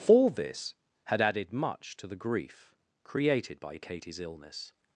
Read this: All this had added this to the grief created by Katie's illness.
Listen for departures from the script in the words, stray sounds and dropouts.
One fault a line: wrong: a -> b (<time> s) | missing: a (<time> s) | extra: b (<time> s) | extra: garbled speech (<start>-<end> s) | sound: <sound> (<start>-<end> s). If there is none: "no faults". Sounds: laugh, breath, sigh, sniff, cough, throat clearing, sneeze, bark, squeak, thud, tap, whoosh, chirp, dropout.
wrong: this -> much (1.5 s)